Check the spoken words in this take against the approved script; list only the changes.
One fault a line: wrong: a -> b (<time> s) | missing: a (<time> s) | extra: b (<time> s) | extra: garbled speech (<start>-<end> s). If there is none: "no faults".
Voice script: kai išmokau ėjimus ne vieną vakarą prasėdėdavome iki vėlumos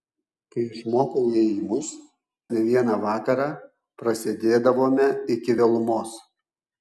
no faults